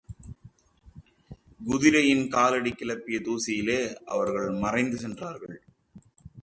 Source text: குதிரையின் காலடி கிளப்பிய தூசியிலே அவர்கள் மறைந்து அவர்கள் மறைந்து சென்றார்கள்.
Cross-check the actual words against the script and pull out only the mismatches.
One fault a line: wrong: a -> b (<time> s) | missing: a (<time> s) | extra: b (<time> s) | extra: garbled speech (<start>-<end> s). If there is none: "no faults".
missing: அவர்கள் மறைந்து (5.0 s)